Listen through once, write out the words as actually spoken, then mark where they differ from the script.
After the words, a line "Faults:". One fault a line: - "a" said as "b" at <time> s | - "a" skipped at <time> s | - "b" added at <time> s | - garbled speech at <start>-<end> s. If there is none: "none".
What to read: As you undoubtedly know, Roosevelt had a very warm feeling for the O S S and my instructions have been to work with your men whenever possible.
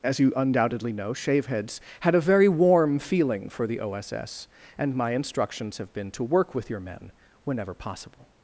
As you undoubtedly know, Shaveheads had a very warm feeling for the O S S and my instructions have been to work with your men whenever possible.
Faults:
- "Roosevelt" said as "Shaveheads" at 1.1 s